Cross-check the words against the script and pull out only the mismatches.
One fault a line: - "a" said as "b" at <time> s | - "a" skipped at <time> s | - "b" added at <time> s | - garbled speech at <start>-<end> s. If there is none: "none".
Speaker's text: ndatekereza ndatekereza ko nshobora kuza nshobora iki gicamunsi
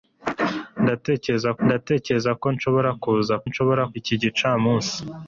none